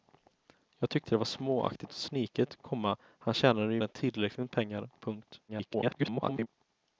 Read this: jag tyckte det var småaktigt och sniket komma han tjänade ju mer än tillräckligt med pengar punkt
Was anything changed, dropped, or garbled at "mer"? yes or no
yes